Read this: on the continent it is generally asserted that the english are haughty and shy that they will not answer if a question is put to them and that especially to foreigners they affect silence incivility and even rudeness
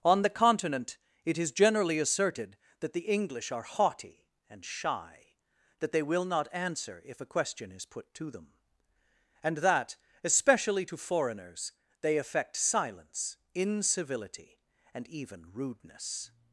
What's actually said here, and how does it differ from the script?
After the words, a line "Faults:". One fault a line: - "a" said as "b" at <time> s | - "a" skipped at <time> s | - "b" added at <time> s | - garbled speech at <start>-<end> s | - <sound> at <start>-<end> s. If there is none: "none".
on the continent it is generally asserted that the english are haughty and shy that they will not answer if a question is put to them and that especially to foreigners they affect silence incivility and even rudeness
Faults:
none